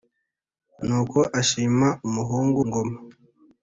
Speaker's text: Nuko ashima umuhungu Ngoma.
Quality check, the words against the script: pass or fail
pass